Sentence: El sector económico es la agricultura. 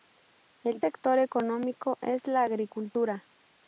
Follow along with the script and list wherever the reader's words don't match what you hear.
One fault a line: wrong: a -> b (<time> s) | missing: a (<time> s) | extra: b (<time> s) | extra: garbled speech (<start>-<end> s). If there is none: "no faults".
no faults